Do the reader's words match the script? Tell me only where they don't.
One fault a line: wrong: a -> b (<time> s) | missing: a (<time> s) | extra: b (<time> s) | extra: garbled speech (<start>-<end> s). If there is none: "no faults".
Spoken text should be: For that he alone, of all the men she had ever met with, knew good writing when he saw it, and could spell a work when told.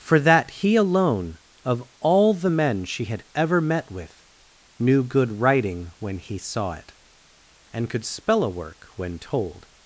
no faults